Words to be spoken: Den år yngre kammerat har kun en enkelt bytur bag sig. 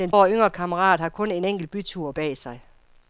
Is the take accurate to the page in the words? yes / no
yes